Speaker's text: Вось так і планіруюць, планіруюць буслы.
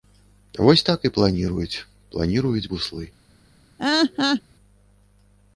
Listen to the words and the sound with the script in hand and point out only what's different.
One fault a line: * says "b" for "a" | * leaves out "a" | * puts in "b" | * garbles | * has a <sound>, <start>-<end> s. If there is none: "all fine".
* has a laugh, 3.8-4.4 s